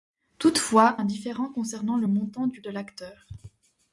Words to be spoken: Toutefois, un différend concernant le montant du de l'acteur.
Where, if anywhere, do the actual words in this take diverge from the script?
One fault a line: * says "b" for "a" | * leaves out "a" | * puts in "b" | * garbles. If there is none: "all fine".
all fine